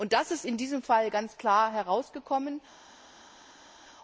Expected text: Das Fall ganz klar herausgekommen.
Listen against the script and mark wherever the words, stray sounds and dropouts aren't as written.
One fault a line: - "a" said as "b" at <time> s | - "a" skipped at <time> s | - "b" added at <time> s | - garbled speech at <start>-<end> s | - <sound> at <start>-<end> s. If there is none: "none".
- "ist in diesem" added at 0.3 s